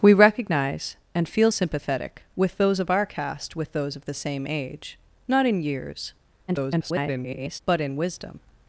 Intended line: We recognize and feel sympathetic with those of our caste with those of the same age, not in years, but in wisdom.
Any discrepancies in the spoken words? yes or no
yes